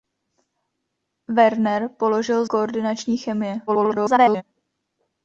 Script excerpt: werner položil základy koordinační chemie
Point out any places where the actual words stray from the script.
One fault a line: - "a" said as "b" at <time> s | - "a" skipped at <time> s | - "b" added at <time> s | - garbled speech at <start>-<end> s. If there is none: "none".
- "základy" skipped at 2.5 s
- garbled speech at 3.7-4.4 s